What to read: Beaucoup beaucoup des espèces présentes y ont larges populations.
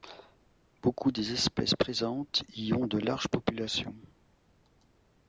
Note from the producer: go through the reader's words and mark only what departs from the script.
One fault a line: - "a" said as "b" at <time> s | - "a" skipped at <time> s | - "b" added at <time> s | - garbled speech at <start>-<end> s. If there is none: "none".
- "beaucoup" skipped at 1.1 s
- "de" added at 2.9 s